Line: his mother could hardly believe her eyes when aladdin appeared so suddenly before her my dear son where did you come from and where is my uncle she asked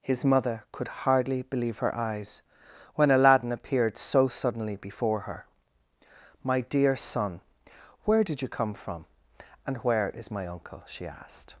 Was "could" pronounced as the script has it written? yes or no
yes